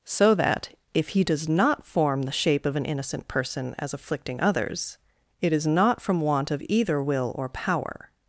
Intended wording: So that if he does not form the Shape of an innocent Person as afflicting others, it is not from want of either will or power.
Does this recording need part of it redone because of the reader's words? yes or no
no